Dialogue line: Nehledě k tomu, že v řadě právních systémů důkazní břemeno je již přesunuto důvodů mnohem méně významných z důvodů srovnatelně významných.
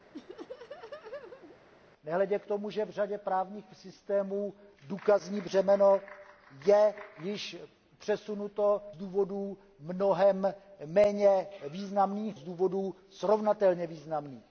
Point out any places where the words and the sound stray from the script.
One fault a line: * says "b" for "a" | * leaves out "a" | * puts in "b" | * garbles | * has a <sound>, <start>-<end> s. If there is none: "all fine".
* has a laugh, 0.1-1.6 s